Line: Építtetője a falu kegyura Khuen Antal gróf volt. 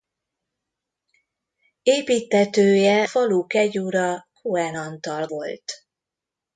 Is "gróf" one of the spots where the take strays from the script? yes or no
yes